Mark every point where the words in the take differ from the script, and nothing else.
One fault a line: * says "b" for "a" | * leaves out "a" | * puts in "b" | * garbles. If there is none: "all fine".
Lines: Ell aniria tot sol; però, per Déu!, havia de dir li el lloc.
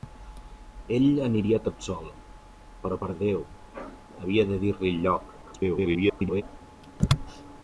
* garbles